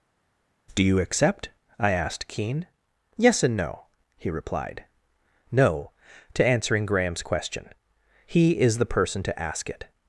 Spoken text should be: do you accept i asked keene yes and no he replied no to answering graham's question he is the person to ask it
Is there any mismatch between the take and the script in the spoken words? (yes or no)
no